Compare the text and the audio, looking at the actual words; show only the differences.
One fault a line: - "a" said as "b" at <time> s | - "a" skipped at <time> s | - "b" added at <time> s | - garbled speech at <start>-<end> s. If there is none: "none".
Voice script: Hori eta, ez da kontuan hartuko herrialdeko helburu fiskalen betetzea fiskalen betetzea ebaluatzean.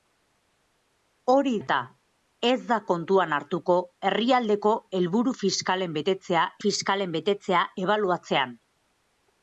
none